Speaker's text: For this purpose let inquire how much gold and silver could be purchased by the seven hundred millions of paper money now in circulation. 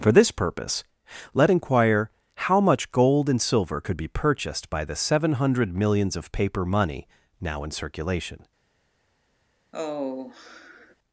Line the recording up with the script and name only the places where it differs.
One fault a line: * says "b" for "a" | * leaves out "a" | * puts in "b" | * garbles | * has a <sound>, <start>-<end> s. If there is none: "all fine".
* has a sigh, 9.7-11.0 s